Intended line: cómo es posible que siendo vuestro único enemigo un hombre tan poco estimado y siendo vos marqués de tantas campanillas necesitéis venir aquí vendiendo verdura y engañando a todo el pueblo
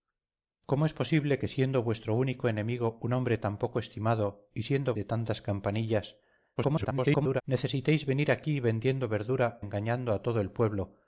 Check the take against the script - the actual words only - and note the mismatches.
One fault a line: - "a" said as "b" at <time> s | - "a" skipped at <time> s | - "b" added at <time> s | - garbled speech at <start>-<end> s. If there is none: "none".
- "vos marqués" skipped at 4.9 s
- garbled speech at 6.6-7.4 s
- "y" skipped at 9.6 s